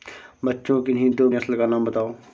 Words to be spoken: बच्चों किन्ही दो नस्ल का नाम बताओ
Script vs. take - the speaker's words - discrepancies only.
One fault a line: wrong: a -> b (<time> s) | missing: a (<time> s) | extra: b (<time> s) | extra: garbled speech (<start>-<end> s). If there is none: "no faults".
no faults